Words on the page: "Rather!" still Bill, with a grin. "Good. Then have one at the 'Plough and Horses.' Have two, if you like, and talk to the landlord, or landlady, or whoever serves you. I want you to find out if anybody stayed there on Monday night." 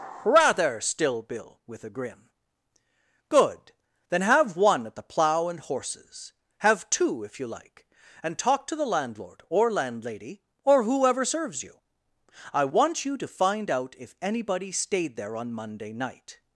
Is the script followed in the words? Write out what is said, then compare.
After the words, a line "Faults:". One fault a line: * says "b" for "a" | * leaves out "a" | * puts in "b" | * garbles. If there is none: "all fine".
"Rather!" still Bill, with a grin. "Good. Then have one at the 'Plough and Horses.' Have two, if you like, and talk to the landlord, or landlady, or whoever serves you. I want you to find out if anybody stayed there on Monday night."
Faults:
all fine